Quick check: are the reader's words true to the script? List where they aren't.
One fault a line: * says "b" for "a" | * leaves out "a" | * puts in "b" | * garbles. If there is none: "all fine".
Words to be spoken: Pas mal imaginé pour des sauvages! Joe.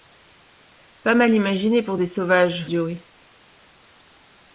all fine